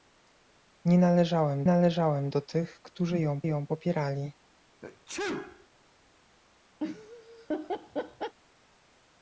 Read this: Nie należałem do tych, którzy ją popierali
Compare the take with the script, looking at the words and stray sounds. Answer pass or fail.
fail